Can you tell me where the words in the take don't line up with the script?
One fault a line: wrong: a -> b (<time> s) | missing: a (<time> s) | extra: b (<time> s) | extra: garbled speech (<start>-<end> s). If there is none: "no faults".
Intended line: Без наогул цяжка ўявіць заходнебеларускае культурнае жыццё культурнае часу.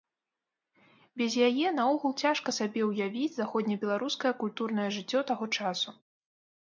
extra: яе (1.5 s)
extra: сабе (2.6 s)
wrong: культурнае -> таго (5.3 s)